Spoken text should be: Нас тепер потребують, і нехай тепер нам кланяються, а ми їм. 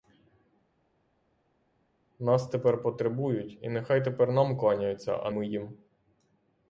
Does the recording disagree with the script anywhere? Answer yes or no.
no